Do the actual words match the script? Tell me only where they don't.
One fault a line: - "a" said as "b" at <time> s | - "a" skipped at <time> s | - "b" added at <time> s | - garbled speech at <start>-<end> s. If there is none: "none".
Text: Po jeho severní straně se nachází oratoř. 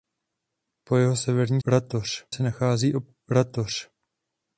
- "straně" said as "oratoř" at 1.7 s